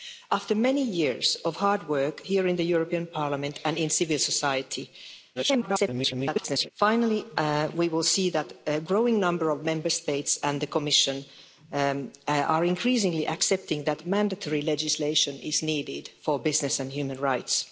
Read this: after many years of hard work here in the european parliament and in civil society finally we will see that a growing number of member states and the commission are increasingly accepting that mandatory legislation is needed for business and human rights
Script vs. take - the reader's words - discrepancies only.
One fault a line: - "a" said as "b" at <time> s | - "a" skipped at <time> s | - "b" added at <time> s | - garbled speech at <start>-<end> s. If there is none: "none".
- garbled speech at 5.3-6.7 s